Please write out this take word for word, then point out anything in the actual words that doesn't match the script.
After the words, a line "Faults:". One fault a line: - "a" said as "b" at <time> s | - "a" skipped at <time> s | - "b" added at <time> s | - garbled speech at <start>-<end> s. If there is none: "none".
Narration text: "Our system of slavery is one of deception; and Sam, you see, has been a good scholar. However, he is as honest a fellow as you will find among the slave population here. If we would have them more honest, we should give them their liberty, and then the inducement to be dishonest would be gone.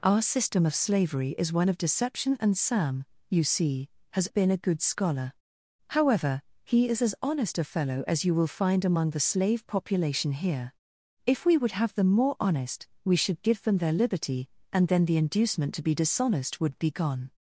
"Our system of slavery is one of deception; and Sam, you see, has been a good scholar. However, he is as honest a fellow as you will find among the slave population here. If we would have them more honest, we should give them their liberty, and then the inducement to be dishonest would be gone.
Faults:
none